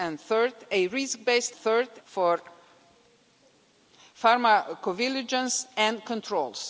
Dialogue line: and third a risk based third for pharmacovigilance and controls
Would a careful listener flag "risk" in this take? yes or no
no